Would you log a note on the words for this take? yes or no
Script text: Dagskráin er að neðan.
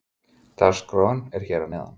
yes